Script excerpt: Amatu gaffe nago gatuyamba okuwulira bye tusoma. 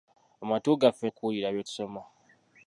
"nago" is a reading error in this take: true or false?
true